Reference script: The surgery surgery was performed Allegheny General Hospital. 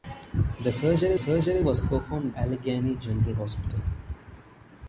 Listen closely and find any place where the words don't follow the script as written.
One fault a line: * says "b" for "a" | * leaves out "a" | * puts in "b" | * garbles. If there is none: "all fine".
all fine